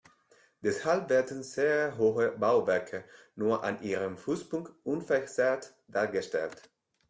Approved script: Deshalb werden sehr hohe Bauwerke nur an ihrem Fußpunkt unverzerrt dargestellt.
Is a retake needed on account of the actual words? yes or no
no